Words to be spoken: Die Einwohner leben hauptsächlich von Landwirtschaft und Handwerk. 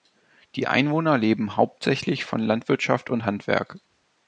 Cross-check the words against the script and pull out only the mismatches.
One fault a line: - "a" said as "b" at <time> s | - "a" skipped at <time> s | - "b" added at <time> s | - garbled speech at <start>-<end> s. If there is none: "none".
none